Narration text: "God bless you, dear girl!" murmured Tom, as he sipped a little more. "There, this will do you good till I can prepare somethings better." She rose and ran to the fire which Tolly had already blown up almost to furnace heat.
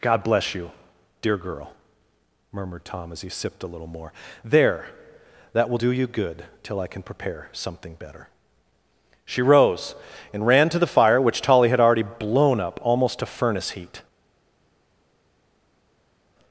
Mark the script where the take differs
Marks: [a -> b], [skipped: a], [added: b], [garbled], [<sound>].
"God bless you, dear girl!" murmured Tom, as he sipped a little more. "There, [this -> that] will do you good till I can prepare [somethings -> something] better." She rose and ran to the fire which Tolly had already blown up almost to furnace heat.